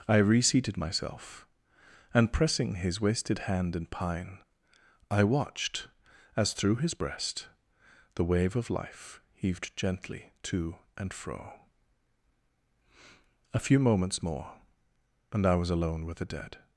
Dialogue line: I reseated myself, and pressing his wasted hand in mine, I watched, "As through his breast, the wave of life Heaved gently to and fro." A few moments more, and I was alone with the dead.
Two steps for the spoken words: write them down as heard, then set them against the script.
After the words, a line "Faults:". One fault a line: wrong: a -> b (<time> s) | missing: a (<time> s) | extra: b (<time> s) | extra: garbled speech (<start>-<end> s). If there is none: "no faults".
I reseated myself, and pressing his wasted hand in pine, I watched, "As through his breast, the wave of life Heaved gently to and fro." A few moments more, and I was alone with the dead.
Faults:
wrong: mine -> pine (3.9 s)